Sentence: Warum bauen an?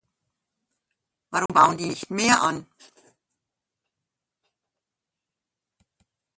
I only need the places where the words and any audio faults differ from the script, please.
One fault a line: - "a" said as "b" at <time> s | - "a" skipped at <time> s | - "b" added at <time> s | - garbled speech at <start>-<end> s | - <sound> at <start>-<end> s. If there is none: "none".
- dropout at 1.5-1.5 s
- "die nicht mehr" added at 1.8 s